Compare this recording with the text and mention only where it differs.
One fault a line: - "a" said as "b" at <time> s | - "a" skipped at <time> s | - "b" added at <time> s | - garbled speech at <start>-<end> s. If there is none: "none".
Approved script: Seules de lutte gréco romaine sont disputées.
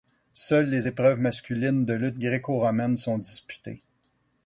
- "les épreuves masculines" added at 0.7 s